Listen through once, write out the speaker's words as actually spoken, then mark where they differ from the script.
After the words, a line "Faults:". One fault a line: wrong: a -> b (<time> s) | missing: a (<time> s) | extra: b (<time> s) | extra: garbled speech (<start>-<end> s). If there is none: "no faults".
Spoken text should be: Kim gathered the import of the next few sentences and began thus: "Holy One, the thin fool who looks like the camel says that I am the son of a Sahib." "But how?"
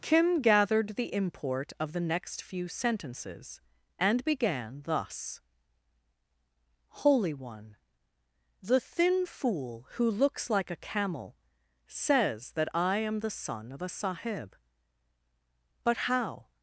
Kim gathered the import of the next few sentences and began thus: "Holy One, the thin fool who looks like a camel says that I am the son of a Sahib." "But how?"
Faults:
wrong: the -> a (10.7 s)